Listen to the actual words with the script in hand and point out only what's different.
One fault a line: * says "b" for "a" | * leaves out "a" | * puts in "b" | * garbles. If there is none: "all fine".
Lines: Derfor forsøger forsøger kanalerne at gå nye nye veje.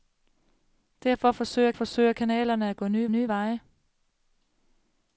all fine